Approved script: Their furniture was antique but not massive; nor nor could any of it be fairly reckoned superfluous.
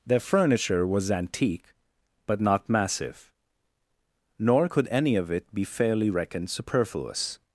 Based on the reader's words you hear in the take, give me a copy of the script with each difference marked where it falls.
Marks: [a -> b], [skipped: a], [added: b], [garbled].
Their furniture was antique but not massive; nor [skipped: nor] could any of it be fairly reckoned superfluous.